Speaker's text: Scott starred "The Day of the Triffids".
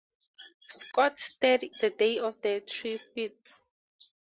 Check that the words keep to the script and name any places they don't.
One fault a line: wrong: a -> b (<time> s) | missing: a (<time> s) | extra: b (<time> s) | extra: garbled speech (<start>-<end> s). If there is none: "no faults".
no faults